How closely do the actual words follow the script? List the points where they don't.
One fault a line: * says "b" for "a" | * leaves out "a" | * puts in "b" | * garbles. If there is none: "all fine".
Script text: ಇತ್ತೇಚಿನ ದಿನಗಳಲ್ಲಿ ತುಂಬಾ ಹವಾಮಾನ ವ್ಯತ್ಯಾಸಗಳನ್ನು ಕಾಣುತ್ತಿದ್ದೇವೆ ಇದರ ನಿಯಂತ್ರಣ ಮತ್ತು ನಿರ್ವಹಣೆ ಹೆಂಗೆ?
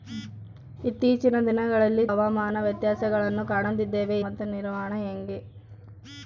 * leaves out "ತುಂಬಾ"
* leaves out "ಇದರ ನಿಯಂತ್ರಣ"